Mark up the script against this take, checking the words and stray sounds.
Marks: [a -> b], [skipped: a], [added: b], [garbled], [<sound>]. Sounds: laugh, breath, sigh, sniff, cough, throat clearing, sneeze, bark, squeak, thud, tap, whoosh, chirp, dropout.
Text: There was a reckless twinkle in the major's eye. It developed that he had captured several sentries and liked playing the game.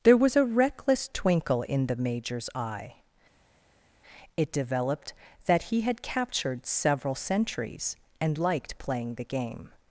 There was a reckless twinkle in the major's eye. It developed that he had captured several [sentries -> centuries] and liked playing the game.